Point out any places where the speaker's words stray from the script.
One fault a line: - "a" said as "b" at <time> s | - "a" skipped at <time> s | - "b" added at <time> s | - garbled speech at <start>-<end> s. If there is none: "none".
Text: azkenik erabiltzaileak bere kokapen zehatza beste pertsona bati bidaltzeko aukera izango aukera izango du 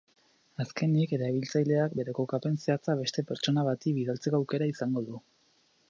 - "aukera izango" skipped at 5.0 s